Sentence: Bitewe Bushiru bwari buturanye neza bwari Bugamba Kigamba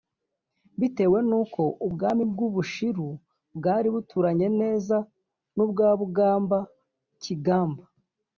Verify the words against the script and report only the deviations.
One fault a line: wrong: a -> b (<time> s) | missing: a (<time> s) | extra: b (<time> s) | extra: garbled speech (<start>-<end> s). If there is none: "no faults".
extra: n'uko Ubwami bw'u (1.3 s)
wrong: bwari -> n'ubwa (5.5 s)